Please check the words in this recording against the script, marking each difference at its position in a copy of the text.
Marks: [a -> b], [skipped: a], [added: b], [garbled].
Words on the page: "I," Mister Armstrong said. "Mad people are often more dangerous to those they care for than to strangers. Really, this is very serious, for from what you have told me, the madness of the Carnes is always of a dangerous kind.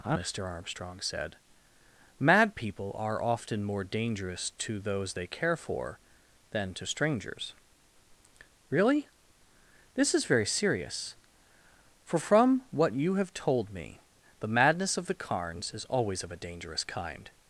"I," Mister Armstrong said. "Mad people are often more dangerous to those they care for than to strangers. Really, this is very serious, for from what you have told me, the madness of the Carnes is always of a dangerous kind.